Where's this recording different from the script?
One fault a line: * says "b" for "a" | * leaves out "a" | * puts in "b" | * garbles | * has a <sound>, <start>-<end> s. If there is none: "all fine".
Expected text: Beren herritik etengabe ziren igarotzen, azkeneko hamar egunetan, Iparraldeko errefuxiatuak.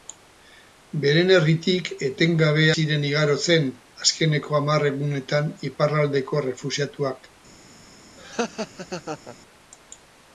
* has a laugh, 8.2-9.4 s